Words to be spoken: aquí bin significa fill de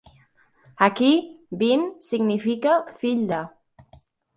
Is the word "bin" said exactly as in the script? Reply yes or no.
yes